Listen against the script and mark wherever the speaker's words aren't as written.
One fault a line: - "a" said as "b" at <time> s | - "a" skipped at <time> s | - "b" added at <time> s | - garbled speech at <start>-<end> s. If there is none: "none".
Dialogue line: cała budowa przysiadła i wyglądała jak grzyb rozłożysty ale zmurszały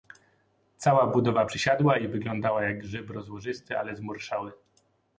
none